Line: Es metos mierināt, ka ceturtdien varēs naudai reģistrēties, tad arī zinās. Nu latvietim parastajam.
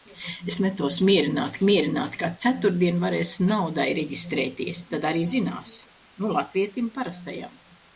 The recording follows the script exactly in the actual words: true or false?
false